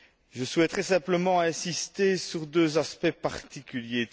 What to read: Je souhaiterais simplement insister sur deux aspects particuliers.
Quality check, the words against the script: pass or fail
pass